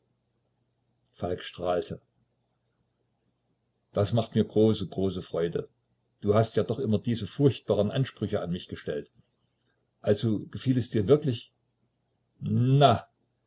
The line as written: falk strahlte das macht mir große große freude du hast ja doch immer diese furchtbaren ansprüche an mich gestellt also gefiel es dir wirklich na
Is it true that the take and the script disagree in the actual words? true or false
false